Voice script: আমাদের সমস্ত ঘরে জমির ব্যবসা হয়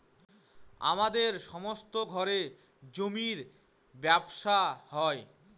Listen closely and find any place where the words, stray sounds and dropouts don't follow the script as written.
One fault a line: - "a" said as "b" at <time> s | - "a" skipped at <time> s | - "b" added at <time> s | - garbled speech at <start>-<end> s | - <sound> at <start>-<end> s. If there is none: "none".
none